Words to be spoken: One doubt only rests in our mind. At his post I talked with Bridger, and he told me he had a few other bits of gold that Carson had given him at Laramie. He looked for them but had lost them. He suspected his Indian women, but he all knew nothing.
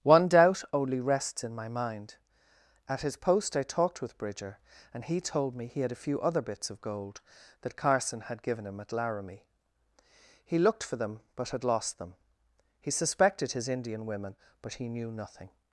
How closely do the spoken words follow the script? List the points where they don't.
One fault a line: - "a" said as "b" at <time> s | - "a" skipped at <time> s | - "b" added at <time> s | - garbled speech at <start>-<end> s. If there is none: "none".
- "our" said as "my" at 1.5 s
- "all" skipped at 14.9 s